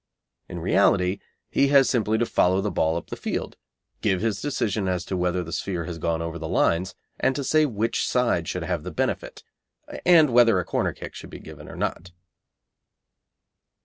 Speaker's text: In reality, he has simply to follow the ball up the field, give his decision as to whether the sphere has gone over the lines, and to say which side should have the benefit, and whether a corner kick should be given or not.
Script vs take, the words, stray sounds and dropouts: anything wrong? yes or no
no